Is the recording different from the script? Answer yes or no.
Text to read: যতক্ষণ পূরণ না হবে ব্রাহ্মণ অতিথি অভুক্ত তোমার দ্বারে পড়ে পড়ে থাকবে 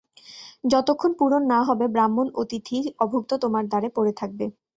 yes